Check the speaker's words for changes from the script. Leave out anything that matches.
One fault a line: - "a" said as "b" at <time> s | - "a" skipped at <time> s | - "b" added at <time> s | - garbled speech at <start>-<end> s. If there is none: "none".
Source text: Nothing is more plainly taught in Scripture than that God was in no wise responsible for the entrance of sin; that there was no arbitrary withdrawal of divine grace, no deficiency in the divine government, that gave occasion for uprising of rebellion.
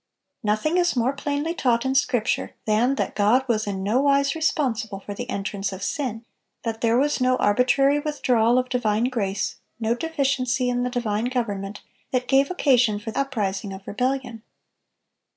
none